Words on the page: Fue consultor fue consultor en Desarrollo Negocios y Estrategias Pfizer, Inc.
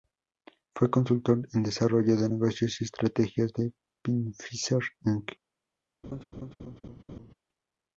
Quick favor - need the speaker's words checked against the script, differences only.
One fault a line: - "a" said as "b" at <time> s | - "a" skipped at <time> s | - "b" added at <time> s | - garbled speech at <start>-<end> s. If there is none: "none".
- "fue consultor" skipped at 1.5 s
- "de" added at 2.2 s
- "de" added at 3.5 s